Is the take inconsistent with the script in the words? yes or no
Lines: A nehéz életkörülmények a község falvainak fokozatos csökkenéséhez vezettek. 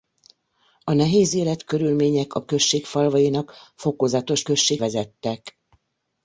yes